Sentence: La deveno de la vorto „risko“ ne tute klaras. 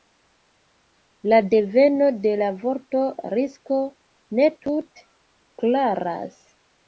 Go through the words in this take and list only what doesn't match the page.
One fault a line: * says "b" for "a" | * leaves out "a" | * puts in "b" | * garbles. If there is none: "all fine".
all fine